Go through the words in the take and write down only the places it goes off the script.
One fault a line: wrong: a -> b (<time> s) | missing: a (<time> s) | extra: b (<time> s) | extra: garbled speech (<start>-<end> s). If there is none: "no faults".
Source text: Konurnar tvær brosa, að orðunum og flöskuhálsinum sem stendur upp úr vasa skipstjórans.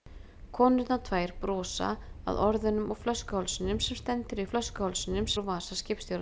wrong: upp -> flöskuhálsinum (4.5 s)